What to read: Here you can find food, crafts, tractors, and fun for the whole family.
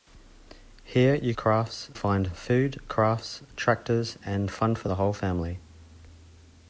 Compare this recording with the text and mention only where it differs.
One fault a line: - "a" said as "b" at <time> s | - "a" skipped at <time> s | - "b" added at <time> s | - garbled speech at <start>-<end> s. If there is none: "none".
- "can" said as "crafts" at 1.4 s